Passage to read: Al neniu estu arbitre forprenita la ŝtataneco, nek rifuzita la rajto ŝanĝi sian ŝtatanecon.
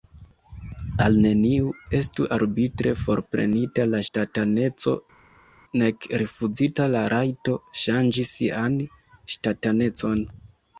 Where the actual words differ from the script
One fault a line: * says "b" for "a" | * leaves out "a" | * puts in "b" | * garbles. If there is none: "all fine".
all fine